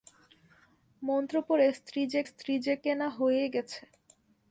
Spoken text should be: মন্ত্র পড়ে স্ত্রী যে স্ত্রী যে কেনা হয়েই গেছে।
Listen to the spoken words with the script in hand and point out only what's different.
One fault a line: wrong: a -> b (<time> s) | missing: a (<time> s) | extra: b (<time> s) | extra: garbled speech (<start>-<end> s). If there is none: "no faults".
no faults